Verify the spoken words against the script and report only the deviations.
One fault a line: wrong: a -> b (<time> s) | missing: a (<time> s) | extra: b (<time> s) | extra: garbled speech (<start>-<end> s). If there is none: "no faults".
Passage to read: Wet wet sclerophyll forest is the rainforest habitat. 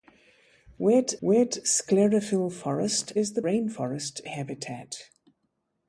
no faults